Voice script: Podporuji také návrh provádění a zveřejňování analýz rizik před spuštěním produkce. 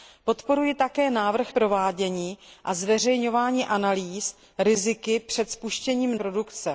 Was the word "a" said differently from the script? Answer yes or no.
no